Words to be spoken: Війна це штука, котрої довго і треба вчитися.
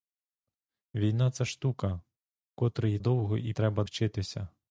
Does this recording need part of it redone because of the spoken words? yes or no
no